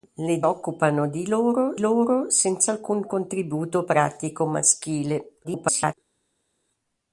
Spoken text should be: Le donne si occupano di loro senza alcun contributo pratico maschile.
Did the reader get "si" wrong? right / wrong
wrong